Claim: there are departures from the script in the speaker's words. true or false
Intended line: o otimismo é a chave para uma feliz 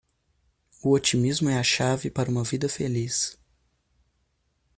true